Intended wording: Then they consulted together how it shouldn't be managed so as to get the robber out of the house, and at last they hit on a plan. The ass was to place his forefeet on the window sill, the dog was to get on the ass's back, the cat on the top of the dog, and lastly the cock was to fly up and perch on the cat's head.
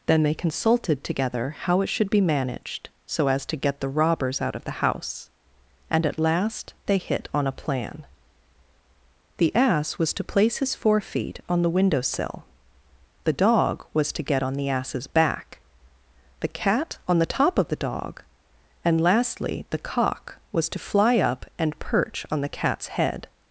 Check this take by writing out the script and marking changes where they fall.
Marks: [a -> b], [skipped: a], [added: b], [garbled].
Then they consulted together how it [shouldn't -> should] be managed so as to get the [robber -> robbers] out of the house, and at last they hit on a plan. The ass was to place his forefeet on the window sill, the dog was to get on the ass's back, the cat on the top of the dog, and lastly the cock was to fly up and perch on the cat's head.